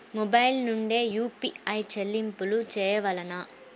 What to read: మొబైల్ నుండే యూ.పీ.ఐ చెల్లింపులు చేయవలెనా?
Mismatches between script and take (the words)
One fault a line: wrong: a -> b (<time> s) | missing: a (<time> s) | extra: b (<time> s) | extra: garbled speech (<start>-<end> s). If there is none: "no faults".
no faults